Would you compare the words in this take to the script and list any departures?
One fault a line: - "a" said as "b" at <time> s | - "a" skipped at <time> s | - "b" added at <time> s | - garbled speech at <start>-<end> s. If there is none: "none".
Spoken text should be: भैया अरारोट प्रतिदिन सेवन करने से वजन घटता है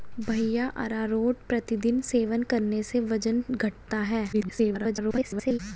- garbled speech at 4.3-5.6 s